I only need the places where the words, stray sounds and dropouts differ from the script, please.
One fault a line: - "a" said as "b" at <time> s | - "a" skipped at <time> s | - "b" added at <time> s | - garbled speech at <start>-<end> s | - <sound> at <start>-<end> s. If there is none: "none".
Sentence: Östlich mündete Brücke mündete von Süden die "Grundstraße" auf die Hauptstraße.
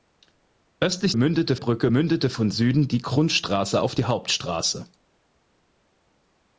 none